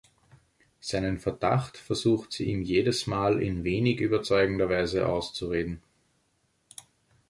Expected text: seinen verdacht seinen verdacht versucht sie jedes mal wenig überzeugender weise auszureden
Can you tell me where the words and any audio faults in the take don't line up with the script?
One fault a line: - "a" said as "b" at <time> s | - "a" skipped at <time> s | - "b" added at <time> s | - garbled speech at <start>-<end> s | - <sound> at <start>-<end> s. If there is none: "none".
- "seinen verdacht" skipped at 1.8 s
- "ihm" added at 2.5 s
- "in" added at 3.4 s